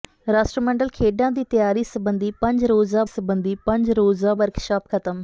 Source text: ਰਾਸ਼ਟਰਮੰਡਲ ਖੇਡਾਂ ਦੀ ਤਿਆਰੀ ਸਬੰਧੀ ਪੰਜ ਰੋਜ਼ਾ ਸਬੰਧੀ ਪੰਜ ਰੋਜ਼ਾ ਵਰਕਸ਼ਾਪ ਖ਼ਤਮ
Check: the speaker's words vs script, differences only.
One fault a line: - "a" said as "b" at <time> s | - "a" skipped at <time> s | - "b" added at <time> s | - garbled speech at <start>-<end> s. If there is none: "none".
none